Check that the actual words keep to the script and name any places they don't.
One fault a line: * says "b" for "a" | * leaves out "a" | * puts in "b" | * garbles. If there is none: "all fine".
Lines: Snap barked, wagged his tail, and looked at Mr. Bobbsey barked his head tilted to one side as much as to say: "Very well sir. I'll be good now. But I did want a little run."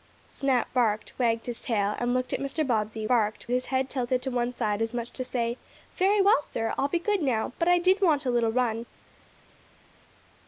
all fine